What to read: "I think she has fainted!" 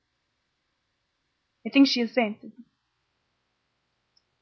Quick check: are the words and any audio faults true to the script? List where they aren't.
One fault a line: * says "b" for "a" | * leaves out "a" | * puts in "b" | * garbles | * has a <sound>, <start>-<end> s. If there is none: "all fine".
all fine